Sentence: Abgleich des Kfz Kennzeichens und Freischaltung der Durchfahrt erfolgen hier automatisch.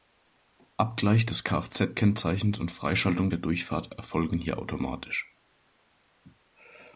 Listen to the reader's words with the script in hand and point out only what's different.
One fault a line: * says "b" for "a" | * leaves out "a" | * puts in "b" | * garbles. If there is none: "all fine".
all fine